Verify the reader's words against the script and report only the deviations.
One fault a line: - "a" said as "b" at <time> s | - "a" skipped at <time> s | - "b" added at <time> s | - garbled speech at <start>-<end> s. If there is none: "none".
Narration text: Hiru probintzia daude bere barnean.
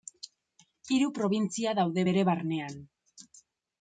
none